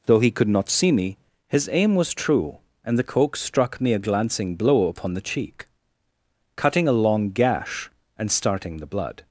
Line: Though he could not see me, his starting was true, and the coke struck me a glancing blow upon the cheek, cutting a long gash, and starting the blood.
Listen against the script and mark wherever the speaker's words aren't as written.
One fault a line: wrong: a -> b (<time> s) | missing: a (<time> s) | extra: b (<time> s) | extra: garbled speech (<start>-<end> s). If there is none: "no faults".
wrong: starting -> aim (1.7 s)